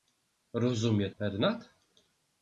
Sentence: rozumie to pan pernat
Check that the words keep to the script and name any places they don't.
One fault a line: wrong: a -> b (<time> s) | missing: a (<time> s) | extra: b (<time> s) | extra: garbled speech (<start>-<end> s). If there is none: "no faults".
missing: to pan (1.1 s)